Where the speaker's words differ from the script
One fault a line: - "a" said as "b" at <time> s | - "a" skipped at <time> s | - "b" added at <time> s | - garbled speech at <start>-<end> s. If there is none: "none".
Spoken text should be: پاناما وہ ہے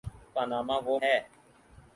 none